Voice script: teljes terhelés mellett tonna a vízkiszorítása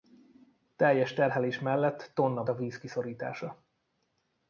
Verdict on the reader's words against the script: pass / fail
pass